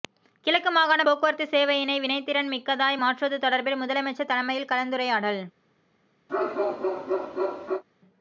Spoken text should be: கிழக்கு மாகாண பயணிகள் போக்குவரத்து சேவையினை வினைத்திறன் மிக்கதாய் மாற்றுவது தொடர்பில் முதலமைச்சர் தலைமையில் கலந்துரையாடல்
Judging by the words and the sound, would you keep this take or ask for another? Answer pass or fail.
fail